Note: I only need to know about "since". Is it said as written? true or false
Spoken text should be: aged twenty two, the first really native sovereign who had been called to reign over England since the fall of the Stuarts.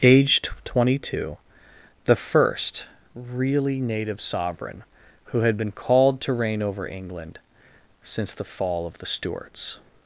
true